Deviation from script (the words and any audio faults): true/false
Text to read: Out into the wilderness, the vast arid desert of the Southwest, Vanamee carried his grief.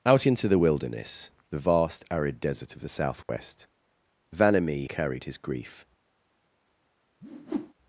true